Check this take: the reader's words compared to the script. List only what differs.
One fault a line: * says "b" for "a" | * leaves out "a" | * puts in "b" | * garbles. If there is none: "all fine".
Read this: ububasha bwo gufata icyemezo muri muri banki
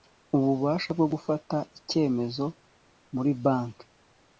* leaves out "muri"